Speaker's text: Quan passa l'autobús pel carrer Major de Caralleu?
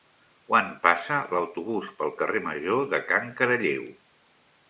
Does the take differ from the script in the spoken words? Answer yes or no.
yes